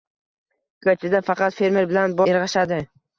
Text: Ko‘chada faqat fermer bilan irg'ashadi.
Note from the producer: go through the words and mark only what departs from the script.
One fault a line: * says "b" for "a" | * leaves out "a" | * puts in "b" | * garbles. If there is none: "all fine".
all fine